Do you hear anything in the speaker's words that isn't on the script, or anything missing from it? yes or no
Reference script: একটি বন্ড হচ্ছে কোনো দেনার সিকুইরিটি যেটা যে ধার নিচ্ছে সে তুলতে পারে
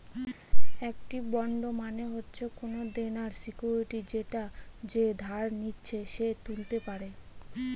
yes